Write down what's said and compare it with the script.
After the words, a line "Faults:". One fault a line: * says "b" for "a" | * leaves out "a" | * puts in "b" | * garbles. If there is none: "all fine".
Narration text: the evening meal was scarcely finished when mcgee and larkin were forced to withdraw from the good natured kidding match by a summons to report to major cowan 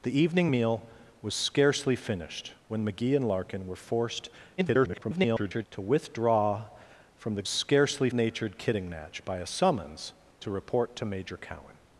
the evening meal was scarcely finished when mcgee and larkin were forced [garbled] to withdraw from the scarcely natured kidding match by a summons to report to major cowan
Faults:
* garbles
* says "scarcely" for "good"